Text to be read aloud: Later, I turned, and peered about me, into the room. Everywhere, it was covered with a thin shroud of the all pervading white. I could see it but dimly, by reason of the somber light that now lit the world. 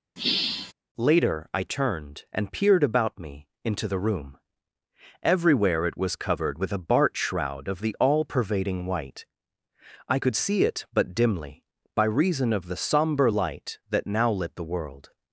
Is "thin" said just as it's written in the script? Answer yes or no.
no